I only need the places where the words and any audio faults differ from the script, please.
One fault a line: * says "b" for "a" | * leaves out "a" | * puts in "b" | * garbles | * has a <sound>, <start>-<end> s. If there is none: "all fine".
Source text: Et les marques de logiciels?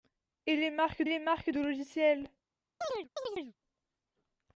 * puts in "les marques"
* has a chirp, 2.8-3.6 s